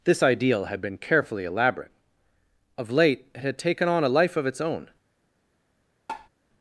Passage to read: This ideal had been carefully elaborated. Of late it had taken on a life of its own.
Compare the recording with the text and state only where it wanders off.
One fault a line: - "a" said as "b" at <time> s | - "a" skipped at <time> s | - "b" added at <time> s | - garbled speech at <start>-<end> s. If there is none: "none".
- "elaborated" said as "elaborate" at 1.4 s